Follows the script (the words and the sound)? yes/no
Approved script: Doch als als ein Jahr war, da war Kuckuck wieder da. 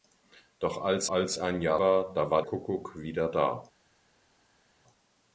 yes